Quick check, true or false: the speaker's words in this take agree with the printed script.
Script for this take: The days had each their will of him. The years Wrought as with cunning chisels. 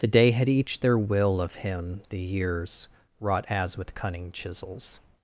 false